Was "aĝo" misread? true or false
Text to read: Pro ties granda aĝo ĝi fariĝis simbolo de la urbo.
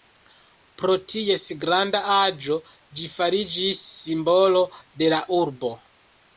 false